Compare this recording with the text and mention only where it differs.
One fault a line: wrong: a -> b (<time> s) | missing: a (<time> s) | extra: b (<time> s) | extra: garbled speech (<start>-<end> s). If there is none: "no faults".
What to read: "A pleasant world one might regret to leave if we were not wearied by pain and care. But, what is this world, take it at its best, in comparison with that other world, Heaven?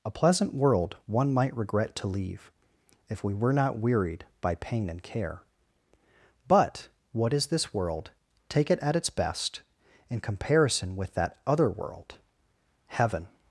no faults